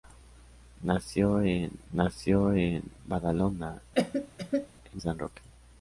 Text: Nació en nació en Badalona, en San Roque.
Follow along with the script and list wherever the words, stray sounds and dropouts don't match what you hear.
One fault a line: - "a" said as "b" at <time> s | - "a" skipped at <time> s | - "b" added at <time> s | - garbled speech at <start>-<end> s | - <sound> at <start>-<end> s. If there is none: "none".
- cough at 4.0-4.7 s